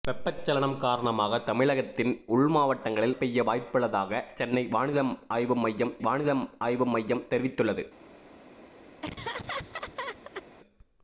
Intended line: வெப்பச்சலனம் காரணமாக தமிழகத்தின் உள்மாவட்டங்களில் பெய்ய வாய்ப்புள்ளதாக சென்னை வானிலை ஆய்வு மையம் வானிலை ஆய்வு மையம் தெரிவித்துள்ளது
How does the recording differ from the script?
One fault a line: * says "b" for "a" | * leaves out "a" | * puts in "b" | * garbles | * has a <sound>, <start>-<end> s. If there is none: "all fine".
* has a laugh, 9.0-10.5 s